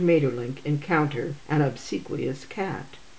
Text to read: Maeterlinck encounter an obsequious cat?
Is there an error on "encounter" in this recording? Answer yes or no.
no